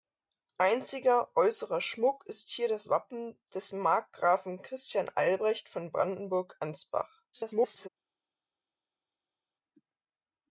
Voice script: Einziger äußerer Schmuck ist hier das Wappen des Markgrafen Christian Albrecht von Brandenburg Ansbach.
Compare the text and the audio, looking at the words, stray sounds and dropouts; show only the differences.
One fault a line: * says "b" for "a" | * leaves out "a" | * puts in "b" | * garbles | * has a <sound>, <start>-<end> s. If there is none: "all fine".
* garbles